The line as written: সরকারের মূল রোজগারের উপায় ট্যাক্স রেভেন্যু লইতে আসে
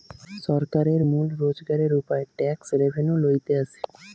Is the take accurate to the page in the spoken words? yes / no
yes